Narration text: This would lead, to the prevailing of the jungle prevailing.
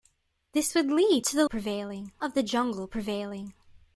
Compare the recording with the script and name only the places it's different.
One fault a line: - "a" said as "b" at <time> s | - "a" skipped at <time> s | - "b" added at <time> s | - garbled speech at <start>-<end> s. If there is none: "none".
none